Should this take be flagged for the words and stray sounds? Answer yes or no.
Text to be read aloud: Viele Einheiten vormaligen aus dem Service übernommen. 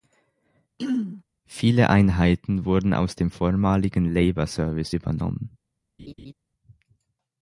yes